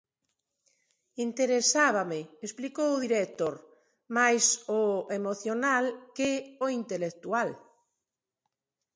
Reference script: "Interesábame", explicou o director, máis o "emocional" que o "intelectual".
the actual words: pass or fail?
pass